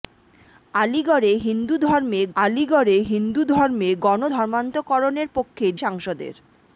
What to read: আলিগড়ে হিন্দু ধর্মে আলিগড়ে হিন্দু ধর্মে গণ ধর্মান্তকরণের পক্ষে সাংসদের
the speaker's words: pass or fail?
pass